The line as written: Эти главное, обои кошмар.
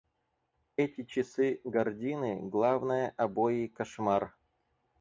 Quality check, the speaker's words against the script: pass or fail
fail